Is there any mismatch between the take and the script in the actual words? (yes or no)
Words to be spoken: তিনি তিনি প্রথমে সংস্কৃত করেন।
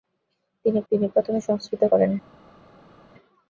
no